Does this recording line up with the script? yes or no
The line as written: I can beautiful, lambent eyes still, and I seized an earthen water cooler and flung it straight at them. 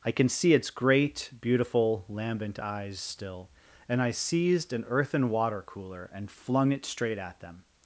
no